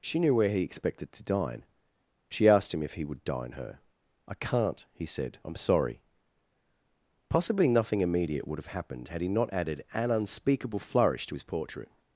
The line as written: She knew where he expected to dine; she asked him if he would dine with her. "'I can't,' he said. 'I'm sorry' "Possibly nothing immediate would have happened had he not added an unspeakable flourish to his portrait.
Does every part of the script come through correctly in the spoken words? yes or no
no